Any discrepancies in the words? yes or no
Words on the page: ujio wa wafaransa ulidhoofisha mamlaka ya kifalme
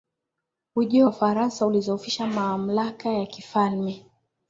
yes